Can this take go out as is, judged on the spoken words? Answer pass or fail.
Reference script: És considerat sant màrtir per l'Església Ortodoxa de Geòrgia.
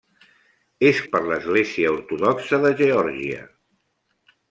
fail